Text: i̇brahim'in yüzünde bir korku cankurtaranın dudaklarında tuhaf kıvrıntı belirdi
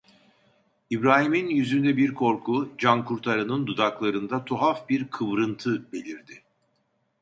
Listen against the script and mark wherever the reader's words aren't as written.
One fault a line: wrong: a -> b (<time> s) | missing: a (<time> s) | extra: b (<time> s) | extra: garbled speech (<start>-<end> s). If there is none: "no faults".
extra: bir (4.9 s)